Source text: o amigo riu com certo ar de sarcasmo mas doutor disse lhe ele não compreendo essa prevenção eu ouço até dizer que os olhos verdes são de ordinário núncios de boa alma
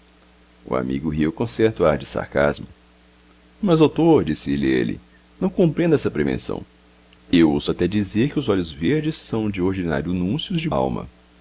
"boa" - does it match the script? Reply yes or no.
no